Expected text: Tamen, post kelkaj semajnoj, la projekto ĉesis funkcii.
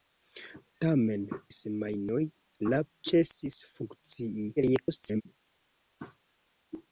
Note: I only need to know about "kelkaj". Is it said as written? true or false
false